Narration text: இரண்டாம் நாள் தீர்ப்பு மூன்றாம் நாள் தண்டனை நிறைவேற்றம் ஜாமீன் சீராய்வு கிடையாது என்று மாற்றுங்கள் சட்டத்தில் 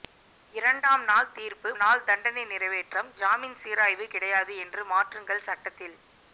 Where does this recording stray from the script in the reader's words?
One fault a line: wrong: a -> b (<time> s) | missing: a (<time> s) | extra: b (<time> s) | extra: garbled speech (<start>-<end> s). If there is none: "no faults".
missing: மூன்றாம் (1.7 s)